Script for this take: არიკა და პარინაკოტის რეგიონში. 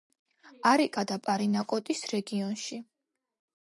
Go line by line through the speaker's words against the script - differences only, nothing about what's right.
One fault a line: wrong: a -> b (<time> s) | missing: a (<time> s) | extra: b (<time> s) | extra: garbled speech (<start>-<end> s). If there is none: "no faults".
no faults